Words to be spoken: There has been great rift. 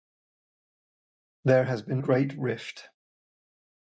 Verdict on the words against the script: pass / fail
pass